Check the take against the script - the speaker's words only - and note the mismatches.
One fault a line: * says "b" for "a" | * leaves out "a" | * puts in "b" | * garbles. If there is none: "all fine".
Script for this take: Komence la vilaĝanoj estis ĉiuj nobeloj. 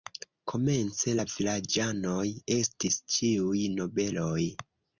all fine